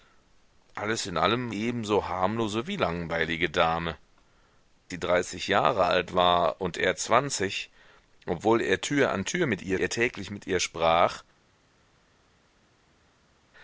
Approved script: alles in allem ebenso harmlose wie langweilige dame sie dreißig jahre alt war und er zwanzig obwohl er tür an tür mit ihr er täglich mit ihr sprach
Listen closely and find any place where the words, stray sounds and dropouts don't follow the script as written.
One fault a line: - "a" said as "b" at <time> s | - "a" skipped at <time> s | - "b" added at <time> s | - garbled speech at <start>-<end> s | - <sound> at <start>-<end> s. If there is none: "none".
none